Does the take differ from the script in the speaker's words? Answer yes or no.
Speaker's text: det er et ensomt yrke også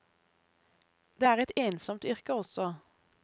no